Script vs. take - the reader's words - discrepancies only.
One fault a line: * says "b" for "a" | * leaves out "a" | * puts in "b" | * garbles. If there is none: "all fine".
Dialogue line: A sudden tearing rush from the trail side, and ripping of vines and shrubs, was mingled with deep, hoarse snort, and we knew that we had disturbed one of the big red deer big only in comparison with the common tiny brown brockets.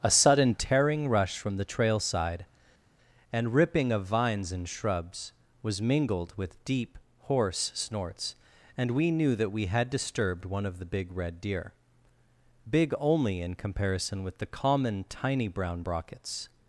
* says "snorts" for "snort"